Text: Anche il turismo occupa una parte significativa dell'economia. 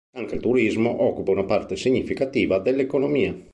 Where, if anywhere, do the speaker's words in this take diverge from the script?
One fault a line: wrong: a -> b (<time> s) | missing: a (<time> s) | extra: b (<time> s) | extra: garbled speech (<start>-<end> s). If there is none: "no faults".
no faults